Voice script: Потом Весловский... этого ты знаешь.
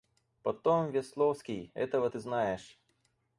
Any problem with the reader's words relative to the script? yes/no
no